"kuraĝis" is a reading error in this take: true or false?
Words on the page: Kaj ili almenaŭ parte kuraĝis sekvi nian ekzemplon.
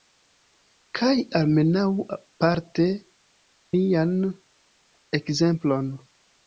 true